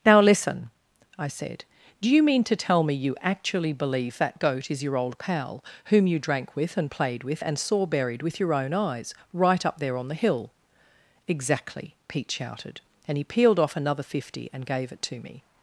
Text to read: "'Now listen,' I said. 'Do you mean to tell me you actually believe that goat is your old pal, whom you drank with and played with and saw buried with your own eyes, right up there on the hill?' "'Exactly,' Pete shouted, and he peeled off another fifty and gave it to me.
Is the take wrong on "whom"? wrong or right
right